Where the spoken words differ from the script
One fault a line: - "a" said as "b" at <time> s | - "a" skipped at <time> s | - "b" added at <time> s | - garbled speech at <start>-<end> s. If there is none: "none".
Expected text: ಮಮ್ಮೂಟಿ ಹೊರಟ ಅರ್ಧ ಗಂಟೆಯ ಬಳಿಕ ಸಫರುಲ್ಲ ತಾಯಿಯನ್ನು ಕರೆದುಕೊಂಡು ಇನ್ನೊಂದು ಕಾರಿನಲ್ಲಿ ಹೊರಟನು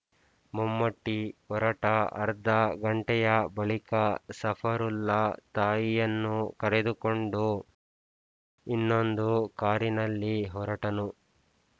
none